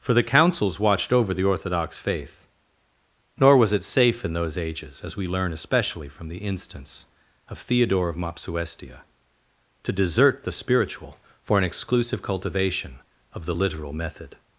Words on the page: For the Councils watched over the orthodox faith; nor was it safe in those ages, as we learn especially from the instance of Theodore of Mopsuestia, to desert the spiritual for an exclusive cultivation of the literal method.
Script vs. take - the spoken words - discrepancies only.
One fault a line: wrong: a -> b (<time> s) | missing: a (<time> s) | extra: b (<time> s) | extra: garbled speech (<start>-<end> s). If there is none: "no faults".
no faults